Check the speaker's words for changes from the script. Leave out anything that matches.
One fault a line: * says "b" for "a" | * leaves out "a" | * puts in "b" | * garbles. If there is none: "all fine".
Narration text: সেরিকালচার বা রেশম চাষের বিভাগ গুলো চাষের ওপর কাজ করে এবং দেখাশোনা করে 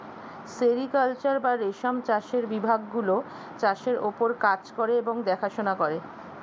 all fine